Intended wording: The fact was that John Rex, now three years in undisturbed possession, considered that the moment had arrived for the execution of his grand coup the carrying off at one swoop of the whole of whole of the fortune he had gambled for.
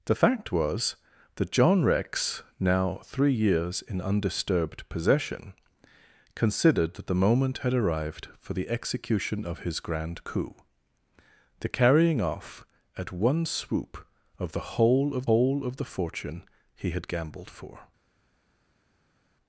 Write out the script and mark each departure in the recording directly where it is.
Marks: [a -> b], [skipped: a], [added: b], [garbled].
The fact was that John Rex, now three years in undisturbed possession, considered that the moment had arrived for the execution of his grand coup the carrying off at one swoop of the whole of whole of the fortune he had gambled for.